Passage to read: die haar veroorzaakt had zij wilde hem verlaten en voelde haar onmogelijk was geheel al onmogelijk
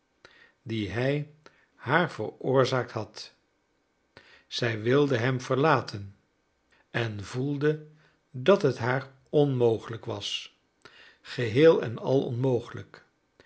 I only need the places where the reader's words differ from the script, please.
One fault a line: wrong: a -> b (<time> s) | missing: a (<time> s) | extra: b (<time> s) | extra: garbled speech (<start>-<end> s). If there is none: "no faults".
extra: hij (0.9 s)
extra: dat het (8.3 s)
extra: en (11.8 s)